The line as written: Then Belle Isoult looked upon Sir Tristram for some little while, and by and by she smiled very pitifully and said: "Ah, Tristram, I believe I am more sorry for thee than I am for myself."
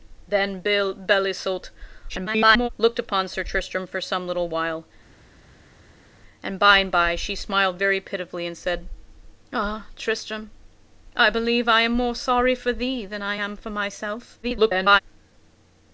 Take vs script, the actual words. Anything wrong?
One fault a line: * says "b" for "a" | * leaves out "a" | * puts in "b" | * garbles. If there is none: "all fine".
* garbles
* garbles